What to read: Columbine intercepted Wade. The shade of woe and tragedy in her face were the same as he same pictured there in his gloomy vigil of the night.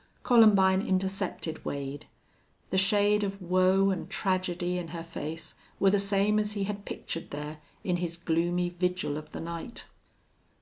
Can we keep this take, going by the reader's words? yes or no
no